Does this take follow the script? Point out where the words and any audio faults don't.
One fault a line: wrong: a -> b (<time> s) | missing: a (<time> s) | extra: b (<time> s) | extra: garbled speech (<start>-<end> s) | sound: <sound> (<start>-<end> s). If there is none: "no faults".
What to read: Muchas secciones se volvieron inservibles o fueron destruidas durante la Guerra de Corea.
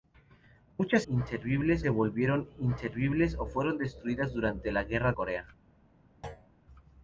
wrong: secciones -> inservibles (1.1 s)
missing: de (5.1 s)
sound: thud (6.2-6.5 s)